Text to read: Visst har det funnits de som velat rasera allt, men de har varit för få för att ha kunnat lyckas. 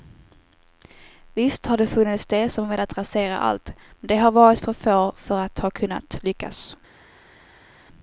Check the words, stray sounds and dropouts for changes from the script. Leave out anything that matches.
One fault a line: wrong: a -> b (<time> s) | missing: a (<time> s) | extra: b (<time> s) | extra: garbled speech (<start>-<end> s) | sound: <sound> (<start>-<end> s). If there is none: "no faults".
no faults